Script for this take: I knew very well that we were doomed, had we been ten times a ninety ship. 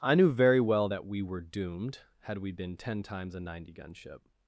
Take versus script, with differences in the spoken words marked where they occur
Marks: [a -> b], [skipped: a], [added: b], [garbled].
I knew very well that we were doomed, had we been ten times a ninety [added: gun] ship.